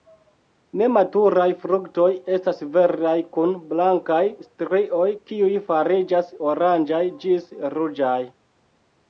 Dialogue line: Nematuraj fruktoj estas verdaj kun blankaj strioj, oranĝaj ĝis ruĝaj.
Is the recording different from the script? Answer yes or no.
yes